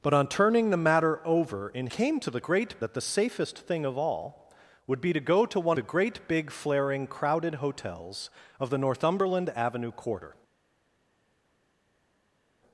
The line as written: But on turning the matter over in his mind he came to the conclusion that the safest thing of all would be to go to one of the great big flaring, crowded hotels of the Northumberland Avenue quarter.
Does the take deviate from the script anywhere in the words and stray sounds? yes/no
yes